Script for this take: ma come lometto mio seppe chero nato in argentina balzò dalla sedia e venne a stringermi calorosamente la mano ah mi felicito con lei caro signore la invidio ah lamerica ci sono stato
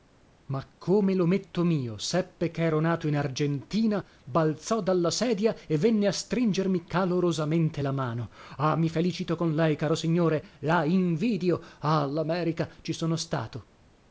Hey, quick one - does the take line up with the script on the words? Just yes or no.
yes